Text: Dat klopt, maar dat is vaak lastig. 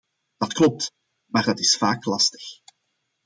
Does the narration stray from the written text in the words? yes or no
no